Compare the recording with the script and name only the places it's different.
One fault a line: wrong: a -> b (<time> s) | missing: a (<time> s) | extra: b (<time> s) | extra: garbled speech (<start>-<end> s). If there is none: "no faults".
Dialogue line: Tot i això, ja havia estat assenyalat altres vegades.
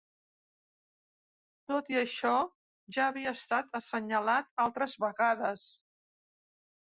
no faults